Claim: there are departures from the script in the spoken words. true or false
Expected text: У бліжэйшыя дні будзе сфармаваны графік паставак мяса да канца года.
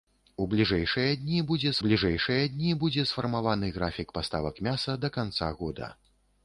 true